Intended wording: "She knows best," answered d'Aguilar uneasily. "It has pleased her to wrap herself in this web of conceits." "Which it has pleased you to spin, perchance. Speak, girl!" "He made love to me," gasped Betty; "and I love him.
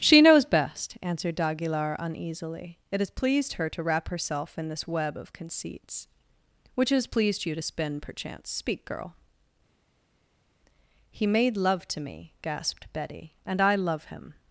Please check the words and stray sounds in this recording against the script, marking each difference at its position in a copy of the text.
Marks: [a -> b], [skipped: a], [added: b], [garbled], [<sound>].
"She knows best," answered d'Aguilar uneasily. "It has pleased her to wrap herself in this web of conceits." "Which [skipped: it] has pleased you to spin, perchance. Speak, girl!" "He made love to me," gasped Betty; "and I love him.